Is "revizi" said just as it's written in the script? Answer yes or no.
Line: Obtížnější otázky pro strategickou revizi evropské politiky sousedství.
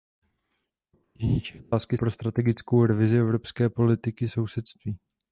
yes